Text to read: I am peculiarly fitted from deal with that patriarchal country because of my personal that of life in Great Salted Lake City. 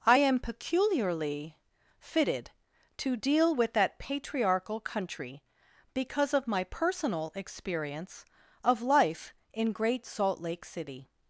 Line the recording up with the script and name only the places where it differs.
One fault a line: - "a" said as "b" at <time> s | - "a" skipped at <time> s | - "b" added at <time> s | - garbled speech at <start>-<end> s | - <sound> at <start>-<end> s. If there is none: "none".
- "from" said as "to" at 3.0 s
- "that" said as "experience" at 7.3 s
- "Salted" said as "Salt" at 10.0 s